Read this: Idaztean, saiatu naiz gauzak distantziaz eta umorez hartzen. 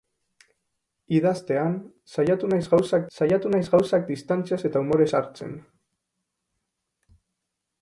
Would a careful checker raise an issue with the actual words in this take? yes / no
yes